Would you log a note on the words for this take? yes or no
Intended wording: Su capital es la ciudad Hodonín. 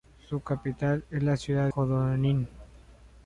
no